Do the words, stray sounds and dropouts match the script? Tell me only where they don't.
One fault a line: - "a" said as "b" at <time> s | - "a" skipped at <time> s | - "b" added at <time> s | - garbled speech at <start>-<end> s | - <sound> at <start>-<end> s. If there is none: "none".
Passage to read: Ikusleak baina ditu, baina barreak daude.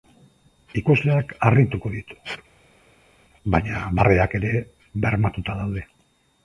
- "baina" said as "harrituko" at 1.5 s
- "ere bermatuta" added at 4.4 s